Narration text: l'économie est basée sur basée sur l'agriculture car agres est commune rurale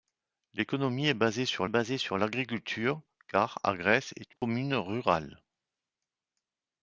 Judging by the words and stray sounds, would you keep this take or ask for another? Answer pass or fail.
fail